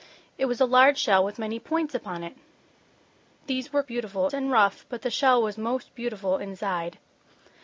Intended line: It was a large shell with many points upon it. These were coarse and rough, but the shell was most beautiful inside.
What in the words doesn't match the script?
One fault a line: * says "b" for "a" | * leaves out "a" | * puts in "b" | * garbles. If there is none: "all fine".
* says "beautiful" for "coarse"